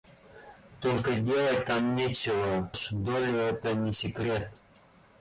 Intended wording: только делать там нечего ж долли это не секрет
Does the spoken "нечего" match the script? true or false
true